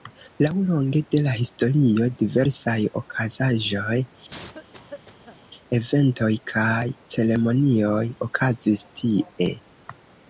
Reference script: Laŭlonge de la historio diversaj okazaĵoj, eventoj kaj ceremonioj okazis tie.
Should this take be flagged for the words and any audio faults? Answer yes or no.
yes